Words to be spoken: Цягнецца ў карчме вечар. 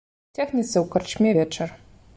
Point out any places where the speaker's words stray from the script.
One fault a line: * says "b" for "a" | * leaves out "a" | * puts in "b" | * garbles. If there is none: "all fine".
all fine